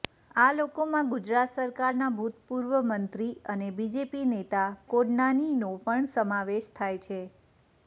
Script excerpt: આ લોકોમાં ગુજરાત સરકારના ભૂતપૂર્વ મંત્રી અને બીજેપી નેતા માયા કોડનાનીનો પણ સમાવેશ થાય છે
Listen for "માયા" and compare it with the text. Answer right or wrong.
wrong